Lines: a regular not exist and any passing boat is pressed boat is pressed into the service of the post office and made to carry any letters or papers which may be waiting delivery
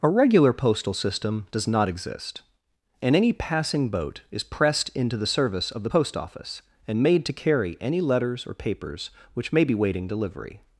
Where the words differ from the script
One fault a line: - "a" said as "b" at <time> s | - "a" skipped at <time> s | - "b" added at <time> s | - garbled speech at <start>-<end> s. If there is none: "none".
- "postal system does" added at 0.5 s
- "boat is pressed" skipped at 4.9 s